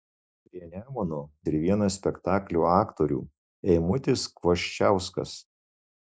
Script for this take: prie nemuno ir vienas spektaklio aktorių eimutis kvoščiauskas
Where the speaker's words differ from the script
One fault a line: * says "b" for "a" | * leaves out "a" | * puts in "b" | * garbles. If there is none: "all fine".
all fine